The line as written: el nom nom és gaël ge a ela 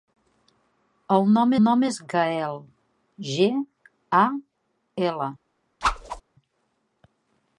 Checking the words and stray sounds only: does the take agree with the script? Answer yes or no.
no